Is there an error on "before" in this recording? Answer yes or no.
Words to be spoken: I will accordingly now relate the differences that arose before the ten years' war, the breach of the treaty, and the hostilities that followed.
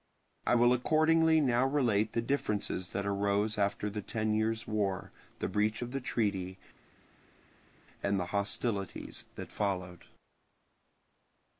yes